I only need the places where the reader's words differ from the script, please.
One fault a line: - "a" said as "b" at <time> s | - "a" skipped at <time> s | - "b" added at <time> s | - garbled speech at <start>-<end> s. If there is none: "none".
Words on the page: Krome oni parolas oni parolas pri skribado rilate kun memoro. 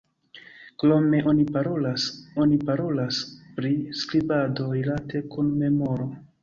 none